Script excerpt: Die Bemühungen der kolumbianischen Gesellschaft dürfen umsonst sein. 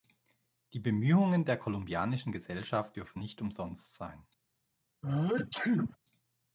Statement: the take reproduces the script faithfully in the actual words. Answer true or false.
false